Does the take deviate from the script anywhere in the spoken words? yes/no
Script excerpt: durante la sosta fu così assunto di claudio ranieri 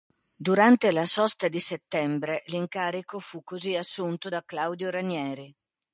yes